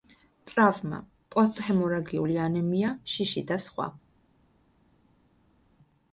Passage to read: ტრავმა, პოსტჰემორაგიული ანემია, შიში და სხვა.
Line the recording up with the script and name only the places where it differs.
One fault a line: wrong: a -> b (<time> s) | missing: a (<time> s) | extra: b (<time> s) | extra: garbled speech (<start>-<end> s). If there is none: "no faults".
no faults